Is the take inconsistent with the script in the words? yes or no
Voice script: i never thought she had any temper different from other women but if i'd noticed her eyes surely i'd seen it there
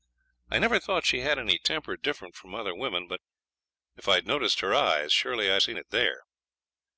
no